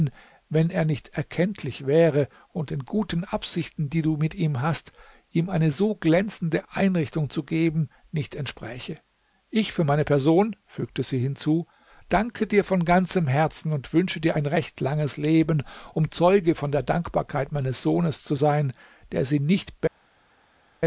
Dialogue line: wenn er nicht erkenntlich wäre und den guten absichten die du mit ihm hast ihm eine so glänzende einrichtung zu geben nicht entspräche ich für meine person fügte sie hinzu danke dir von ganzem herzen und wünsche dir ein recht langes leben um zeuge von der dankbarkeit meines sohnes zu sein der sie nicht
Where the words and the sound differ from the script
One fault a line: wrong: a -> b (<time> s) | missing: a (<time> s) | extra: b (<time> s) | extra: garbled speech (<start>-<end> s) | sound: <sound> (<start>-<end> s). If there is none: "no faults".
no faults